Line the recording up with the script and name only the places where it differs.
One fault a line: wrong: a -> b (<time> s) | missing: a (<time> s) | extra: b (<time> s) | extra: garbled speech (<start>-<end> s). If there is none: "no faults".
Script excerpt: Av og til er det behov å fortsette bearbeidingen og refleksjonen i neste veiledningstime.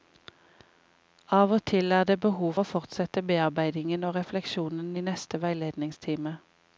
no faults